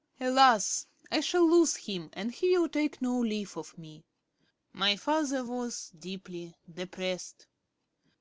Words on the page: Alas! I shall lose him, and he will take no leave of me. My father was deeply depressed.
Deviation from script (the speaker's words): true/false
false